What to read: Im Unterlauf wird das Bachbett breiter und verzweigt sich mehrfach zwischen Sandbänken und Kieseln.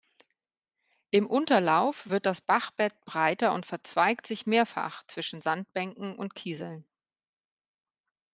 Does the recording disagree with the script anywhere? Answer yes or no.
no